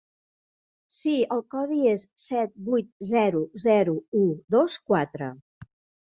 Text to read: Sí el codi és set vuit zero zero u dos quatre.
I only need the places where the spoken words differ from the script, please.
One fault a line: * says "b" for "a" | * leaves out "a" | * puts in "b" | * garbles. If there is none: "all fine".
all fine